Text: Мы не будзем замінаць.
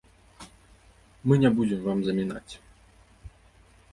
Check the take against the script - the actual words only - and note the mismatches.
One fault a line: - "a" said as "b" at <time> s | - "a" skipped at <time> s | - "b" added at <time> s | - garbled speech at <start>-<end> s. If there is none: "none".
- "вам" added at 1.9 s